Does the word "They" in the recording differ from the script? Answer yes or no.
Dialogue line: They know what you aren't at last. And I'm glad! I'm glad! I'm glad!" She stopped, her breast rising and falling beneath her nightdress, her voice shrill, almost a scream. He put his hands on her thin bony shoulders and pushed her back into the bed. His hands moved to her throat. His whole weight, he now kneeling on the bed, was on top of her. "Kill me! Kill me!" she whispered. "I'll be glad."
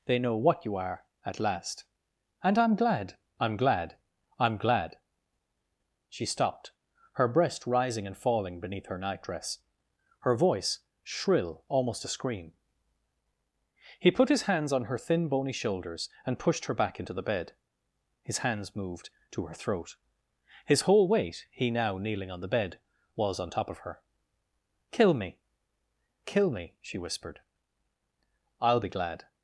no